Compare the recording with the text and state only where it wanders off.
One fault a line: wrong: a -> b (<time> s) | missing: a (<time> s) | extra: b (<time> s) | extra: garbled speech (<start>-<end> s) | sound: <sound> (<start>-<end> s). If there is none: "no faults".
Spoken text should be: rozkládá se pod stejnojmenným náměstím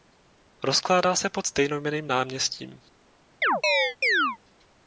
sound: chirp (3.4-4.4 s)